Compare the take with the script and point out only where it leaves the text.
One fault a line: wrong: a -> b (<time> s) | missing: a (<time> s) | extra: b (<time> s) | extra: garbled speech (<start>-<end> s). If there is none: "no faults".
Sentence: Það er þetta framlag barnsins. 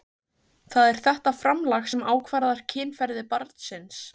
extra: sem ákvarðar kynferði (1.9 s)